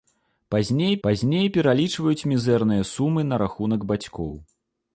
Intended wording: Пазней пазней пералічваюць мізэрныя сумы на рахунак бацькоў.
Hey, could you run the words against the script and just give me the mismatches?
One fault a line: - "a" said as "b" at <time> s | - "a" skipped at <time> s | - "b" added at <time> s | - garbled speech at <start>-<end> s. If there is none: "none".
none